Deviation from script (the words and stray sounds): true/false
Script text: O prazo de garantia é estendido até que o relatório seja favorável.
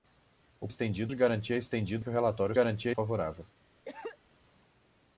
true